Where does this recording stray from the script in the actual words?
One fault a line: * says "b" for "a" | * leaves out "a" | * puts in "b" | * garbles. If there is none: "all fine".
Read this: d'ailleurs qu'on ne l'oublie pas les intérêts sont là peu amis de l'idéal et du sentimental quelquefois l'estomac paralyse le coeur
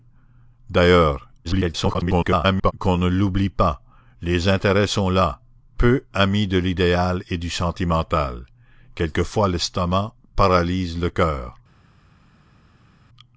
* garbles